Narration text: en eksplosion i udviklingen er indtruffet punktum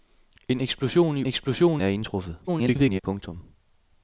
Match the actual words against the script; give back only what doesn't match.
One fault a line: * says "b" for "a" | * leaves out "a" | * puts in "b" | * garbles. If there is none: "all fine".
* says "eksplosion" for "udviklingen"
* garbles